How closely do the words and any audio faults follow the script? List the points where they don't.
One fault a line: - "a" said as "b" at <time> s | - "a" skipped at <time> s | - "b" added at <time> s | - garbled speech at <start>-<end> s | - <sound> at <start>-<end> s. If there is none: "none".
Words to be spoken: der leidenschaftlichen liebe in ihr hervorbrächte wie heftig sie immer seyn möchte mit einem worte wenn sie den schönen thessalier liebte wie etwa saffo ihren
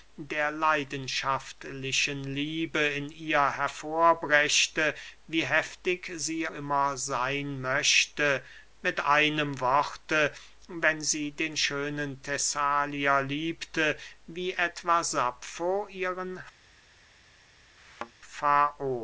- thud at 17.8-18.1 s